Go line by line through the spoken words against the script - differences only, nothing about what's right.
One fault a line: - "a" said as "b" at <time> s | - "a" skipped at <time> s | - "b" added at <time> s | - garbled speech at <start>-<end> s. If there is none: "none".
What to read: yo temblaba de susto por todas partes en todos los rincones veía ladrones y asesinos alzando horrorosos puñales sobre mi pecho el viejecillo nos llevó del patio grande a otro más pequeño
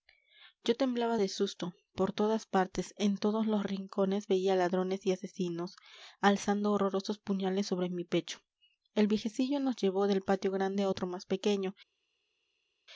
none